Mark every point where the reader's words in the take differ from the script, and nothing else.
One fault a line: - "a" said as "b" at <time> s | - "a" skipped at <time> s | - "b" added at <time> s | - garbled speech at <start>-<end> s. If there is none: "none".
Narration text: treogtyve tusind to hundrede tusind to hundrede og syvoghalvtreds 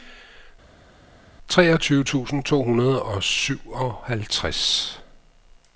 - "tusind to hundrede" skipped at 3.0 s